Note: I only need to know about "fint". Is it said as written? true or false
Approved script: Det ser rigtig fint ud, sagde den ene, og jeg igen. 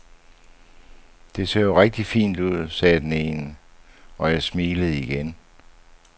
true